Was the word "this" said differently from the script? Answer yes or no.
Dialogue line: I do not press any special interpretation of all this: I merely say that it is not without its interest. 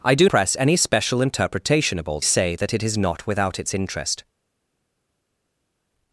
yes